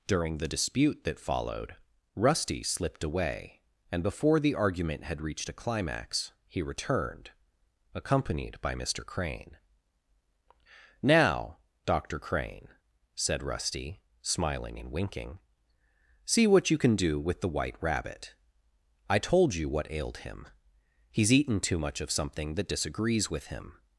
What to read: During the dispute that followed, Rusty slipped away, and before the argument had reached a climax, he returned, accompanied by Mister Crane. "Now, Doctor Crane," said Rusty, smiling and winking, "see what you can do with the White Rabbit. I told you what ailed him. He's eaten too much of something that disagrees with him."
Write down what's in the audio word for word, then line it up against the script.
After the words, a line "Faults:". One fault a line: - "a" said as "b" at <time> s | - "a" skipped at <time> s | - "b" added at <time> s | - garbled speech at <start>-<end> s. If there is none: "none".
During the dispute that followed, Rusty slipped away, and before the argument had reached a climax, he returned, accompanied by Mister Crane. "Now, Doctor Crane," said Rusty, smiling and winking, "see what you can do with the White Rabbit. I told you what ailed him. He's eaten too much of something that disagrees with him."
Faults:
none